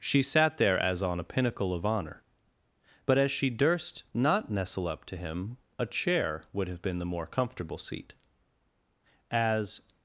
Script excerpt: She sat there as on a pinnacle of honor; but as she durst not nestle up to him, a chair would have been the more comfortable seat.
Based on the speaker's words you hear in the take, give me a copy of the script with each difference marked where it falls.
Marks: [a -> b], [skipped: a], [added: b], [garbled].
She sat there as on a pinnacle of honor; but as she durst not nestle up to him, a chair would have been the more comfortable seat. [added: As]